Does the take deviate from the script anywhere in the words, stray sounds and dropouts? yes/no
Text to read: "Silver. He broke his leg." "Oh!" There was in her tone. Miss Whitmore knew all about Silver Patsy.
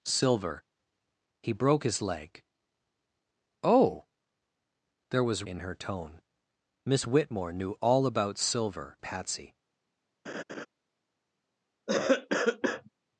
yes